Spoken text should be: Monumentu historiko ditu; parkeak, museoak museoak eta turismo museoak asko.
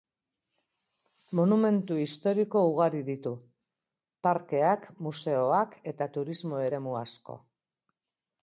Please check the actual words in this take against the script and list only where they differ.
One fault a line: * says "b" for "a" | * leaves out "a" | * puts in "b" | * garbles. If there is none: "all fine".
* puts in "ugari"
* leaves out "museoak"
* says "eremu" for "museoak"